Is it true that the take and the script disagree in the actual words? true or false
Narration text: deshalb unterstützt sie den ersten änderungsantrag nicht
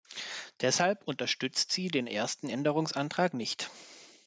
false